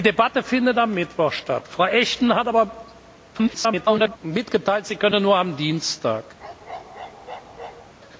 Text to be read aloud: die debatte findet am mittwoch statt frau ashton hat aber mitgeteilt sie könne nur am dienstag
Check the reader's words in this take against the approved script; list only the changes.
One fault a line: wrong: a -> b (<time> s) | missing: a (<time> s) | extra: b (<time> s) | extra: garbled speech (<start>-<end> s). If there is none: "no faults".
extra: garbled speech (3.3-4.2 s)